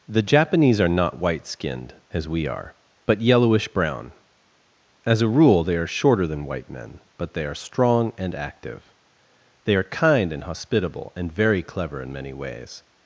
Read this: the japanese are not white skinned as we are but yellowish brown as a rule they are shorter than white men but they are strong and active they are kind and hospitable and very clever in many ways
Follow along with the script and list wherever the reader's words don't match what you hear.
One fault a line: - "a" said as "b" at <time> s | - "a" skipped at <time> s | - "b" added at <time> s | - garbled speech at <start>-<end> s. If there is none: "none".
none